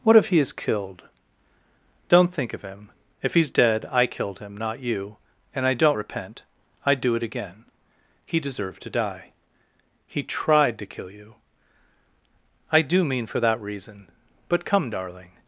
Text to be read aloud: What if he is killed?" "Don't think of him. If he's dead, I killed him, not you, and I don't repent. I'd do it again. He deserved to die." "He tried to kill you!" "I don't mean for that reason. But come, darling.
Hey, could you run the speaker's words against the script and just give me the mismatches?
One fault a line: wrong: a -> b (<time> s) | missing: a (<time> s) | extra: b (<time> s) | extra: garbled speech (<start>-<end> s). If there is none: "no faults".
wrong: don't -> do (12.8 s)